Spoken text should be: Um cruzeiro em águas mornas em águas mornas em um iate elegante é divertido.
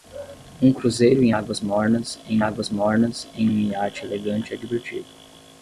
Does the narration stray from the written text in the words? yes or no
no